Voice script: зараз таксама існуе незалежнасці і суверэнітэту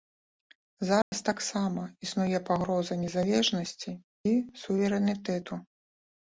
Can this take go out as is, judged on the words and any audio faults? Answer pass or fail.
fail